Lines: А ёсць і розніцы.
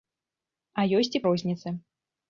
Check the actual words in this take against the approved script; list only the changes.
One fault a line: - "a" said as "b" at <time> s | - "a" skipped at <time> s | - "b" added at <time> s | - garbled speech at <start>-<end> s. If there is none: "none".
none